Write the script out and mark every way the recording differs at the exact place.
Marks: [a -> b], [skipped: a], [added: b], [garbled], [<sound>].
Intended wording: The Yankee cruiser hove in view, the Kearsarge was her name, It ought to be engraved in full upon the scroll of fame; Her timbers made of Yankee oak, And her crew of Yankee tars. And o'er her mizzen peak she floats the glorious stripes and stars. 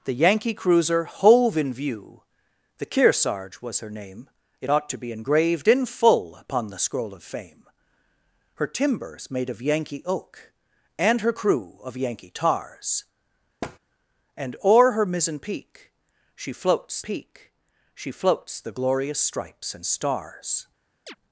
The Yankee cruiser hove in view, the Kearsarge was her name, It ought to be engraved in full upon the scroll of fame; Her timbers made of Yankee oak, And her crew of Yankee tars. [thud] And o'er her mizzen peak she floats [added: peak she floats] the glorious stripes and stars. [chirp]